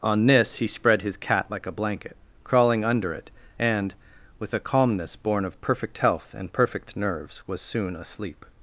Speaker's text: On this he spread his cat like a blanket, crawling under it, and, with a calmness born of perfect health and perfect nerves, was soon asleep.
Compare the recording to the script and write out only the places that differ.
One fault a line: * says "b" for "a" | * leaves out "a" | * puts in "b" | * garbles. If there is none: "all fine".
all fine